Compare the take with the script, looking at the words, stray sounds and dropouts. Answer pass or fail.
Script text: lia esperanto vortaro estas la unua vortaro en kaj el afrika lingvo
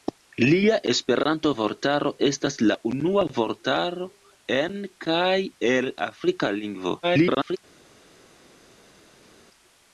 fail